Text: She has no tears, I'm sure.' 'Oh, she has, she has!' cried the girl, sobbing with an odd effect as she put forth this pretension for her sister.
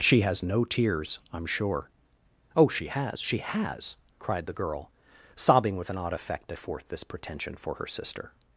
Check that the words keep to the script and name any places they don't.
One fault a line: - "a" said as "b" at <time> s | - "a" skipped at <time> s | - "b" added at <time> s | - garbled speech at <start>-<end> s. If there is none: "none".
- "she put" skipped at 6.6 s